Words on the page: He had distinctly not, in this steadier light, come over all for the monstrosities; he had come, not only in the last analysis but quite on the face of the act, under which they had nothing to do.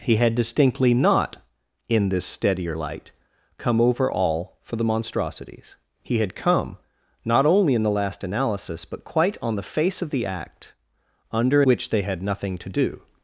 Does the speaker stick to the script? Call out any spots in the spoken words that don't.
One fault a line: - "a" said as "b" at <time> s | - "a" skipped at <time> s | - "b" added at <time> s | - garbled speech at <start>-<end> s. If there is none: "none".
none